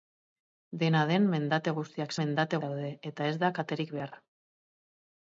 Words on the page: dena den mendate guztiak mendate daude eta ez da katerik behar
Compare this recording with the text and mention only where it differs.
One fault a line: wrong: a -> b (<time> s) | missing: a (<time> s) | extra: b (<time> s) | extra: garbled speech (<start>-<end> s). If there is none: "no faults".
no faults